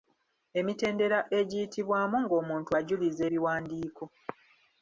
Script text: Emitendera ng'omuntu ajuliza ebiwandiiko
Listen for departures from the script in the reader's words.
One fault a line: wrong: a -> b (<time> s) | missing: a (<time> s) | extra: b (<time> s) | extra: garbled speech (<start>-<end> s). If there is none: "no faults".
extra: egiyitibwamu (1.4 s)